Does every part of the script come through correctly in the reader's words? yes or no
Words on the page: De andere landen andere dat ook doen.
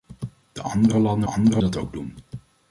yes